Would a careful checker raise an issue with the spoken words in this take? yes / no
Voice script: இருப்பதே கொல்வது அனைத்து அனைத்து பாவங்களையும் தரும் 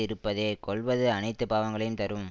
yes